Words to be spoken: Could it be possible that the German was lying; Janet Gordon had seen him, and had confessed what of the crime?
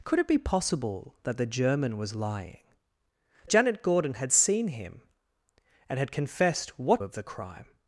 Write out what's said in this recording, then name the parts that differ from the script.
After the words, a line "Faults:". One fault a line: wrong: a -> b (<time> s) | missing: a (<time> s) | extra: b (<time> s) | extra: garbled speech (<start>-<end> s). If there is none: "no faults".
Could it be possible that the German was lying; Janet Gordon had seen him, and had confessed what of the crime?
Faults:
no faults